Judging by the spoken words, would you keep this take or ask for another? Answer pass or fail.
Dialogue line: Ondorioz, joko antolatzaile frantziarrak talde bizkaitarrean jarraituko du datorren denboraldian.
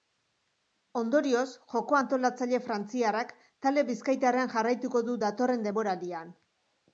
pass